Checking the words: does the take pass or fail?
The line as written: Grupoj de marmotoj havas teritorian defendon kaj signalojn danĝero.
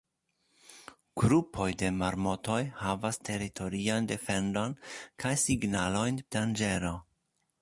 pass